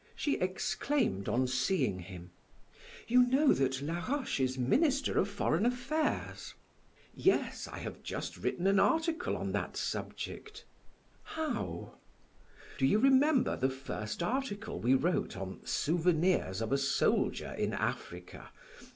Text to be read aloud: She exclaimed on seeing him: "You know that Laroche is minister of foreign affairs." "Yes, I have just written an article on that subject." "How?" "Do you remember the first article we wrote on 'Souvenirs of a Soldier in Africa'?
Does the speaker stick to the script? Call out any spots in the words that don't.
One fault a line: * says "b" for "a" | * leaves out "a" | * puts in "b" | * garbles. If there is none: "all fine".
all fine